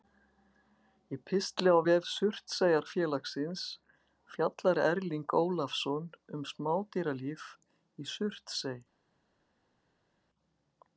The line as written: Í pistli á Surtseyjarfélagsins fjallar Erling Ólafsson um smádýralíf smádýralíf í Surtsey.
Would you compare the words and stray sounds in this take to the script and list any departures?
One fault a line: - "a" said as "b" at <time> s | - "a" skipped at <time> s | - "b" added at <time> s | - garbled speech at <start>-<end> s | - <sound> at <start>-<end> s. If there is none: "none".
- "vef" added at 1.9 s
- "smádýralíf" skipped at 7.5 s